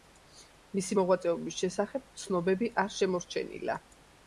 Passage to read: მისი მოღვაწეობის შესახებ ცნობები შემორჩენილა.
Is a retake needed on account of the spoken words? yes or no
yes